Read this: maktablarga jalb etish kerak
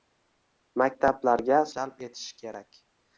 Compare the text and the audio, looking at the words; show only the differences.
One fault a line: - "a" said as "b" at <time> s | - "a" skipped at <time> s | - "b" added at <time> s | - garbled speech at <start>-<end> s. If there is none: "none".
none